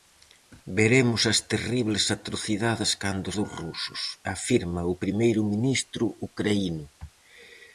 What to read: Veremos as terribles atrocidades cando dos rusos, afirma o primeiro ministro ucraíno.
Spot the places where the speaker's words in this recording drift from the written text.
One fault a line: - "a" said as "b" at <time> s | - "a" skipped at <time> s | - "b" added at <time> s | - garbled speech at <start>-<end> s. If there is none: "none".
none